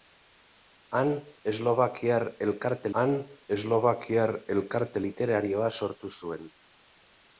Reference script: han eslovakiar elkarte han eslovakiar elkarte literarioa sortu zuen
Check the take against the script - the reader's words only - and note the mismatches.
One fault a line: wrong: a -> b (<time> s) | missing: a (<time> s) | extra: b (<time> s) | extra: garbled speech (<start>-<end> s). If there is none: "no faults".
no faults